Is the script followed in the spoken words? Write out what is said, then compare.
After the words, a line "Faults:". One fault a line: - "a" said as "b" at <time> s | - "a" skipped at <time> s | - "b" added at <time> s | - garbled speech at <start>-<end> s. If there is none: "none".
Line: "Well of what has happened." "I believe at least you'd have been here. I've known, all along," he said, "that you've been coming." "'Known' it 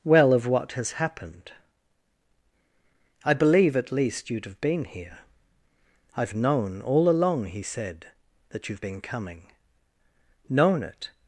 "Well of what has happened." "I believe at least you'd have been here. I've known, all along," he said, "that you've been coming." "'Known' it
Faults:
none